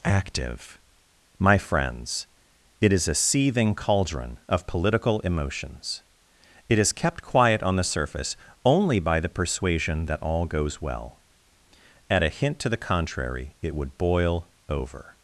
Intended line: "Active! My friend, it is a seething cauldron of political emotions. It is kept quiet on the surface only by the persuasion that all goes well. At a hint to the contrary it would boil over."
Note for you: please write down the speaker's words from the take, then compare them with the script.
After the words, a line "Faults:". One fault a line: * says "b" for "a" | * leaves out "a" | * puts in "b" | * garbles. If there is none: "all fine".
"Active! My friends, it is a seething cauldron of political emotions. It is kept quiet on the surface only by the persuasion that all goes well. At a hint to the contrary it would boil over."
Faults:
* says "friends" for "friend"